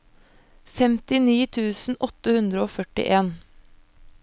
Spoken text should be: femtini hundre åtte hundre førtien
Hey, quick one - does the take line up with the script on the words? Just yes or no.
no